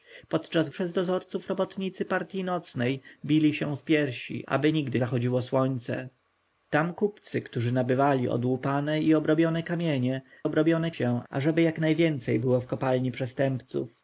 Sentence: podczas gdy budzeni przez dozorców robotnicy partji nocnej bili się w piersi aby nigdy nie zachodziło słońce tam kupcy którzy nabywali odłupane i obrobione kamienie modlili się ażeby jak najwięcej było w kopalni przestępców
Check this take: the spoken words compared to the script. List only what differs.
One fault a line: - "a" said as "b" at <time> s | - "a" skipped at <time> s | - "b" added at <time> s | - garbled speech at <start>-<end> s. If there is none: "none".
- "gdy budzeni" skipped at 0.7 s
- "nie" skipped at 5.0 s
- "modlili" said as "obrobione" at 10.4 s